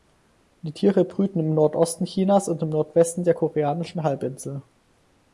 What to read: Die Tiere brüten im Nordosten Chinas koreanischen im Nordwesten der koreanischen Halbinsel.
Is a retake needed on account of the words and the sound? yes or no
yes